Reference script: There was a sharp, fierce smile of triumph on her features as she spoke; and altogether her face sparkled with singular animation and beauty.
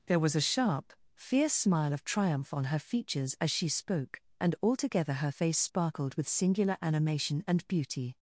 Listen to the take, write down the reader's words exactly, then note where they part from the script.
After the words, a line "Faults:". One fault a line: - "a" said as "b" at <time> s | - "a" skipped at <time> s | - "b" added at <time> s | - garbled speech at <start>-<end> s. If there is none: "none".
There was a sharp, fierce smile of triumph on her features as she spoke; and altogether her face sparkled with singular animation and beauty.
Faults:
none